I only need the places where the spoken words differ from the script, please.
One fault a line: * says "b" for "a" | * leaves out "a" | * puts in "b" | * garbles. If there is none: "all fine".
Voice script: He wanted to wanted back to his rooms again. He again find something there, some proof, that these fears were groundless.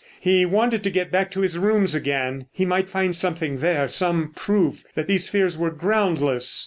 * says "get" for "wanted"
* says "might" for "again"